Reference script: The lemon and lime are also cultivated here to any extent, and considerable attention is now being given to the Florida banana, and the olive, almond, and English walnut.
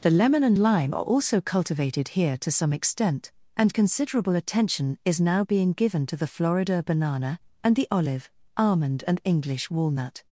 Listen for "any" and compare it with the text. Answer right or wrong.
wrong